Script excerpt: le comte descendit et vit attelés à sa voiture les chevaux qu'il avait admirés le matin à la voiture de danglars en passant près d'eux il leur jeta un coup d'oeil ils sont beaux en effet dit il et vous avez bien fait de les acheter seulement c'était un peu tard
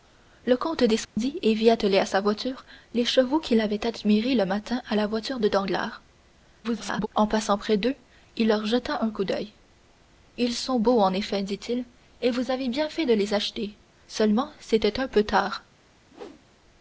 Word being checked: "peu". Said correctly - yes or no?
yes